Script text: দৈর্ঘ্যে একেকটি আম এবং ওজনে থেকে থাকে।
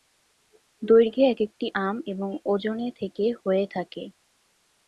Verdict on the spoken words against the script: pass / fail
fail